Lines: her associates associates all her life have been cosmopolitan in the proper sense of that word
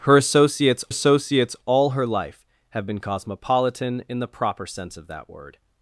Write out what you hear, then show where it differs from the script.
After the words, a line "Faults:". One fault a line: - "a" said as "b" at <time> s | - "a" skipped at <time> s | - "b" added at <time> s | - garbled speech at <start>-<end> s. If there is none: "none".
her associates associates all her life have been cosmopolitan in the proper sense of that word
Faults:
none